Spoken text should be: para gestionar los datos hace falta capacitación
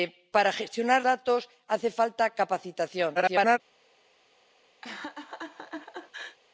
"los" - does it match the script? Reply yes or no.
no